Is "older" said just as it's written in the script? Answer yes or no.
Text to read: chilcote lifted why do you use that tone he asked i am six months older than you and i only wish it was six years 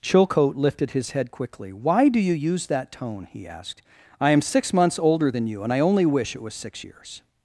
yes